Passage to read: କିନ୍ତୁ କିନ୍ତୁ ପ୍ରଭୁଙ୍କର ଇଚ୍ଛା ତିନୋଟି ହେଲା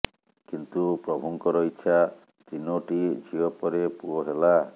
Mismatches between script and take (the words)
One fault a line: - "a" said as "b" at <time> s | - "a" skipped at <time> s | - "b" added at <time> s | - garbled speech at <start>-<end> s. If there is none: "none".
- "କିନ୍ତୁ" skipped at 0.9 s
- "ଝିଅ ପରେ ପୁଅ" added at 3.2 s